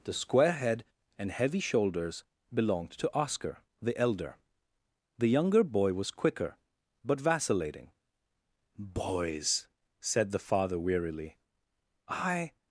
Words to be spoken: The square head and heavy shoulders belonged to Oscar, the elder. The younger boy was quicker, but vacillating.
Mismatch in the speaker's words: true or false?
true